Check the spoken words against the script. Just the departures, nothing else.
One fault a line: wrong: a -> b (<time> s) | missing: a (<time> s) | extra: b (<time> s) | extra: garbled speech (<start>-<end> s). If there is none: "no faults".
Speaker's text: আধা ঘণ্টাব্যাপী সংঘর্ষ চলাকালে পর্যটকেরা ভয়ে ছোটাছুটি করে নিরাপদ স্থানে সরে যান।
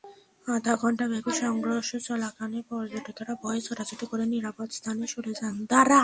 no faults